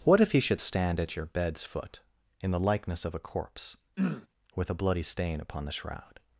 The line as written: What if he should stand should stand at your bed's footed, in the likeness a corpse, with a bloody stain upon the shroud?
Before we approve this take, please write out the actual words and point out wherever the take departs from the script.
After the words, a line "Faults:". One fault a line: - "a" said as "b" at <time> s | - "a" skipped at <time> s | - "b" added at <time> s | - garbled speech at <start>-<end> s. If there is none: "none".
What if he should stand at your bed's foot, in the likeness of a corpse, with a bloody stain upon the shroud?
Faults:
- "should stand" skipped at 1.0 s
- "footed" said as "foot" at 1.6 s
- "of" added at 3.0 s